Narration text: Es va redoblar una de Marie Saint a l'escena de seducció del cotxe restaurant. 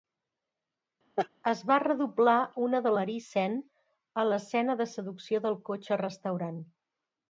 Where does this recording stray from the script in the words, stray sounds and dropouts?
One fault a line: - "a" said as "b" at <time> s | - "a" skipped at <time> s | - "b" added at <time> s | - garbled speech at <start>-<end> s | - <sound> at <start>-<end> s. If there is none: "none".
- laugh at 1.2-1.3 s